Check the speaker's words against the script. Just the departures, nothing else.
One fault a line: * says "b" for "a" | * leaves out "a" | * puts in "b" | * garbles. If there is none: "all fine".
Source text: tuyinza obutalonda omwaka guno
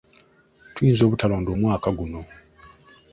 all fine